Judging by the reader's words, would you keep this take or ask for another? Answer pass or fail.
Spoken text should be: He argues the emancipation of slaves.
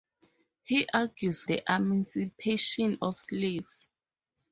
pass